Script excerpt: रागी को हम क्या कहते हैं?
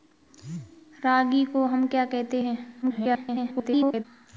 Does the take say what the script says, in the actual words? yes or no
no